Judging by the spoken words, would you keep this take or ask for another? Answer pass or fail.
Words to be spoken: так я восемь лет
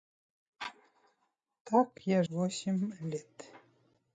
pass